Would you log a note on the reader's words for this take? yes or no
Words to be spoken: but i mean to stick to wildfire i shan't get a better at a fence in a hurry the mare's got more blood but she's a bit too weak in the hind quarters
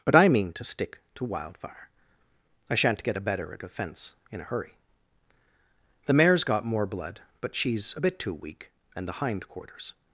yes